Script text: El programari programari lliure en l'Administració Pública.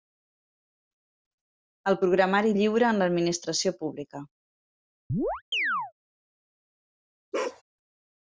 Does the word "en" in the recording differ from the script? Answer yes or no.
no